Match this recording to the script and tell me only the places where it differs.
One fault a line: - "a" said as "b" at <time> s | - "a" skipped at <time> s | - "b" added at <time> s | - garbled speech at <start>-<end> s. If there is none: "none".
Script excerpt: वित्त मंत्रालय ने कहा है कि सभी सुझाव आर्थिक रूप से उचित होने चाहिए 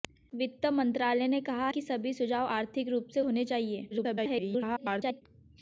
- "है" skipped at 1.7 s
- "उचित" skipped at 3.2 s
- garbled speech at 3.9-5.2 s